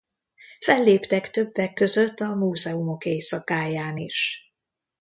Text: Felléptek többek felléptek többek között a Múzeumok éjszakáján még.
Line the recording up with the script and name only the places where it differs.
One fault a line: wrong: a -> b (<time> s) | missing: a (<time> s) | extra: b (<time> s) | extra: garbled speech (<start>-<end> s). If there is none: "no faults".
missing: felléptek többek (1.7 s)
wrong: még -> is (4.0 s)